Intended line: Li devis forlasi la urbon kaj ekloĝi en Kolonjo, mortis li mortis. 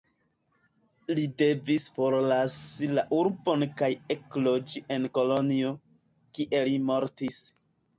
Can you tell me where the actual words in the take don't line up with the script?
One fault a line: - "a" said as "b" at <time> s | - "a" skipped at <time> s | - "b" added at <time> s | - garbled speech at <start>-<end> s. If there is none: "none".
- "mortis" said as "kie" at 6.4 s